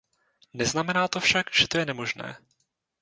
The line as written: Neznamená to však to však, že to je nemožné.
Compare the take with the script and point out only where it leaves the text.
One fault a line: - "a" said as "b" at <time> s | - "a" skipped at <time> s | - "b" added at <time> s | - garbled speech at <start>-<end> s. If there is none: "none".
- "to však" skipped at 1.5 s